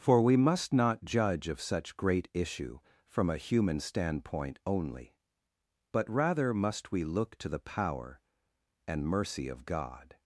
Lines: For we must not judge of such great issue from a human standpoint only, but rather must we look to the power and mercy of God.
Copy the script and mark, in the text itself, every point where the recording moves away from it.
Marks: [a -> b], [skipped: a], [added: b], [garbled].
For we must not judge of such great issue from a human standpoint only, but rather must we look to the power and mercy of God.